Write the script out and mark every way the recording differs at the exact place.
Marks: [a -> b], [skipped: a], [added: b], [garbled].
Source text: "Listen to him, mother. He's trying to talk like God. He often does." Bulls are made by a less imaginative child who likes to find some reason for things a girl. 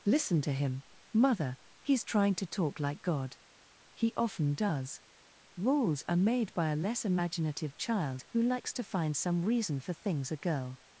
"Listen to him, mother. He's trying to talk like God. He often does." [Bulls -> Rules] are made by a less imaginative child who likes to find some reason for things a girl.